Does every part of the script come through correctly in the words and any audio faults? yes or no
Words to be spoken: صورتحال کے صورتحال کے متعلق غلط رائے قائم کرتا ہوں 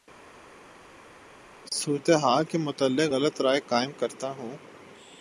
no